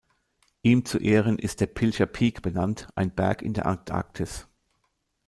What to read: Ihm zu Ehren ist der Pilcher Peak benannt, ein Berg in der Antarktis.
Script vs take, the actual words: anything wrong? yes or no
no